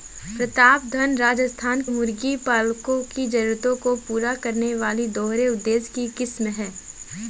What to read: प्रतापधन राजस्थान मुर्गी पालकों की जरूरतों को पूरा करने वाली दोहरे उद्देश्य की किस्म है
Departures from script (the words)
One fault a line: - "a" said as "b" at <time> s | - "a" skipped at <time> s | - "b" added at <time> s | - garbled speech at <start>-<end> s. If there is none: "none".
none